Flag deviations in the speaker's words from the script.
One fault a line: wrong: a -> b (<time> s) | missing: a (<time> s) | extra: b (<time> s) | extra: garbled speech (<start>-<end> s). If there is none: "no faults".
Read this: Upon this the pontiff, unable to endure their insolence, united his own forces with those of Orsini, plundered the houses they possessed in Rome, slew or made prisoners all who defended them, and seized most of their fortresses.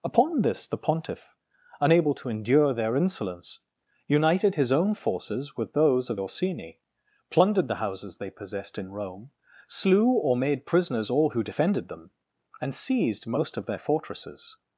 no faults